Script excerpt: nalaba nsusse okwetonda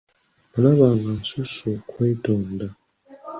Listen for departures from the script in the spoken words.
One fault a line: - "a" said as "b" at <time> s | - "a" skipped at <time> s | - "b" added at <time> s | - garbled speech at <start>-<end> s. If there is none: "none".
- "nga" added at 0.9 s